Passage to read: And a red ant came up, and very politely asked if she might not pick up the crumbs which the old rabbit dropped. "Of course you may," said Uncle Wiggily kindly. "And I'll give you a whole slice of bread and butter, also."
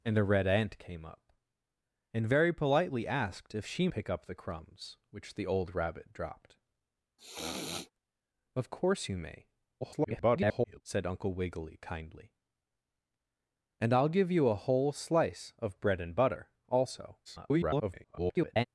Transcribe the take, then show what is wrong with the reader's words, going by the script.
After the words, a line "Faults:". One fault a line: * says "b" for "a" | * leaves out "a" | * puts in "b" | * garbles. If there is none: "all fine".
And a red ant came up, and very politely asked if she pick up the crumbs which the old rabbit dropped. "Of course you may," [garbled] said Uncle Wiggily kindly. "And I'll give you a whole slice of bread and butter, also." [garbled]
Faults:
* leaves out "might not"
* garbles
* garbles